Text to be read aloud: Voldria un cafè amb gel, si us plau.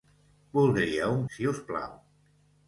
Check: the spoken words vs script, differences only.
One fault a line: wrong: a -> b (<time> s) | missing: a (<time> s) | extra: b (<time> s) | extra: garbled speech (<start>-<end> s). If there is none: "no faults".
missing: cafè amb gel (1.2 s)